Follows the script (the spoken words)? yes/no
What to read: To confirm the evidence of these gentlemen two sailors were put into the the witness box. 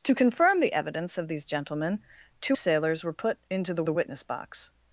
yes